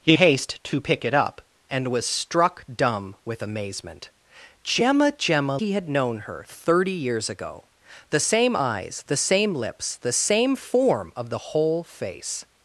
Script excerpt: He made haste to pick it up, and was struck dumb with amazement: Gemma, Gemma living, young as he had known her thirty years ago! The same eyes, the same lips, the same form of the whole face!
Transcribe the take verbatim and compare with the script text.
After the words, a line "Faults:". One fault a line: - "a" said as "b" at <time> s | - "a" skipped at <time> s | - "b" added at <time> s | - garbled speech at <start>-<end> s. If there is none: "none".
He haste to pick it up, and was struck dumb with amazement: Gemma, Gemma he had known her thirty years ago! The same eyes, the same lips, the same form of the whole face!
Faults:
- "made" skipped at 0.2 s
- "living young as" skipped at 5.6 s